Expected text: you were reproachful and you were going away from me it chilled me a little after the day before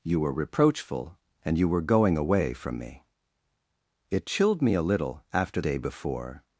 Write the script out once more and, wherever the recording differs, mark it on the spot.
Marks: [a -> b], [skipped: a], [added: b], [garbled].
you were reproachful and you were going away from me it chilled me a little after [skipped: the] day before